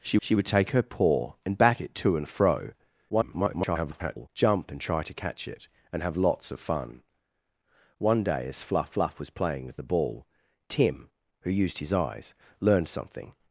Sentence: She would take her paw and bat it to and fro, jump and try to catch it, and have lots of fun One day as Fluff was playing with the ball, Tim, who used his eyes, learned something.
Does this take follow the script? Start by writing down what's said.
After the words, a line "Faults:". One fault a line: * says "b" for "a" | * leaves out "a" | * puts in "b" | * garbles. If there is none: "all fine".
She she would take her paw and bat it to and fro, [garbled] jump and try to catch it, and have lots of fun One day as Fluff Fluff was playing with the ball, Tim, who used his eyes, learned something.
Faults:
* puts in "she"
* garbles
* puts in "Fluff"